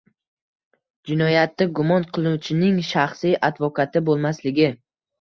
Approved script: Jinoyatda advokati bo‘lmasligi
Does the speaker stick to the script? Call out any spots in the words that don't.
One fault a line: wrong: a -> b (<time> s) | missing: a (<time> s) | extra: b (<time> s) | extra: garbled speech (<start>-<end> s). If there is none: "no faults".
extra: gumon qilinuvchining shaxsiy (1.8 s)